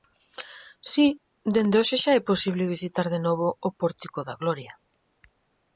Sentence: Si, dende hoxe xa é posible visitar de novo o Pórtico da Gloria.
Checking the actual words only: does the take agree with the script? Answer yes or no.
yes